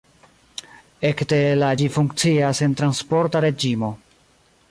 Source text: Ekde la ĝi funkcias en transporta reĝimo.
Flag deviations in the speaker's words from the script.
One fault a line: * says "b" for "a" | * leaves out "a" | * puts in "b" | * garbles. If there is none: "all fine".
all fine